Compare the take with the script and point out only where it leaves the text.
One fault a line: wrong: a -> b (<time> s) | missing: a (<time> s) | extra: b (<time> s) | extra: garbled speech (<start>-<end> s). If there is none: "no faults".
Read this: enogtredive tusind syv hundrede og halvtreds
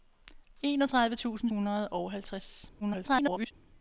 missing: syv (1.5 s)
extra: garbled speech (2.8-3.5 s)